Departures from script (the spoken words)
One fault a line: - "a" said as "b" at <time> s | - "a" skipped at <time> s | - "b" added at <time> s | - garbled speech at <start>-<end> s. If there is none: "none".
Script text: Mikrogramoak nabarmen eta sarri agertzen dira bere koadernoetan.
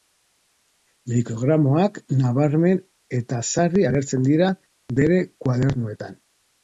none